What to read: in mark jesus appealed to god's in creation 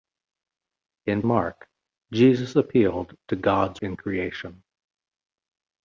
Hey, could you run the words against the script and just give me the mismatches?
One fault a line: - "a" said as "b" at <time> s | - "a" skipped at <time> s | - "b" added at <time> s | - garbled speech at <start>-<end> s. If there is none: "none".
none